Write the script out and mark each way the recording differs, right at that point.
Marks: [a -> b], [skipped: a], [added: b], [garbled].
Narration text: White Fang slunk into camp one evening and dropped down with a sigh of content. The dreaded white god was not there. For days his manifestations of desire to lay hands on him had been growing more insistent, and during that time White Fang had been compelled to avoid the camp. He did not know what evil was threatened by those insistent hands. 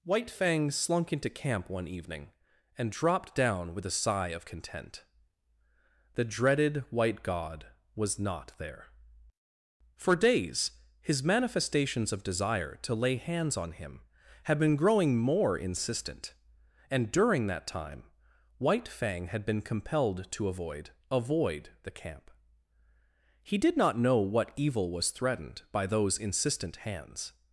White Fang slunk into camp one evening and dropped down with a sigh of content. The dreaded white god was not there. For days his manifestations of desire to lay hands on him had been growing more insistent, and during that time White Fang had been compelled to avoid [added: avoid] the camp. He did not know what evil was threatened by those insistent hands.